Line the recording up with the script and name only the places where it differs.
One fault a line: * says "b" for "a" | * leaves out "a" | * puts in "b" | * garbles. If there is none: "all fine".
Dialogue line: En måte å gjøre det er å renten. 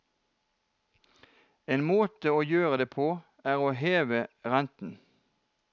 * puts in "på"
* puts in "heve"